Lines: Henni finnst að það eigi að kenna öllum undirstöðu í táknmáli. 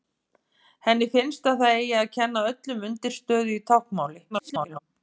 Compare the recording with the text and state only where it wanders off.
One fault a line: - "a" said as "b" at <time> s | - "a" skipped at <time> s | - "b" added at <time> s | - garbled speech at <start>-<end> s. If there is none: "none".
- garbled speech at 4.3-4.8 s